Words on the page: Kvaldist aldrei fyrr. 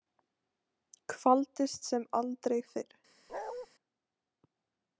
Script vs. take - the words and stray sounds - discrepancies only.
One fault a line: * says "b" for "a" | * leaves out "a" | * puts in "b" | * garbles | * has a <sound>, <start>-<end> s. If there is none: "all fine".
* puts in "sem"
* has a bark, 3.3-3.7 s